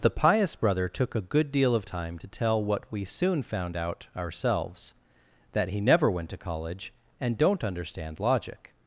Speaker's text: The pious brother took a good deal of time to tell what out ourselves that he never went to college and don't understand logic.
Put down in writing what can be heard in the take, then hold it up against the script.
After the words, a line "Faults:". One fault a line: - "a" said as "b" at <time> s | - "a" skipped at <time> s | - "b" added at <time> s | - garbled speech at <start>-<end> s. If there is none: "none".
The pious brother took a good deal of time to tell what we soon found out ourselves that he never went to college and don't understand logic.
Faults:
- "we soon found" added at 2.9 s